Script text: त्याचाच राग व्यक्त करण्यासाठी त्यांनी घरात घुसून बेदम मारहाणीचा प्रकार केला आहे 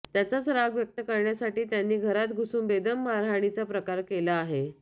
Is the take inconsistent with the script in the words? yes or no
no